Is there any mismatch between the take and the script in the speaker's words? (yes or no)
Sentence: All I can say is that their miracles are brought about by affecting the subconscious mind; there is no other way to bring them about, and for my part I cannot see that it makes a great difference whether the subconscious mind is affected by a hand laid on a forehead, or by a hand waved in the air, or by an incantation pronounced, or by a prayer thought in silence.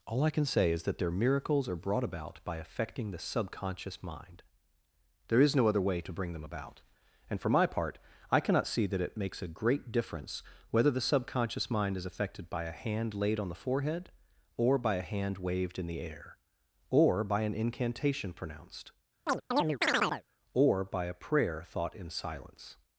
yes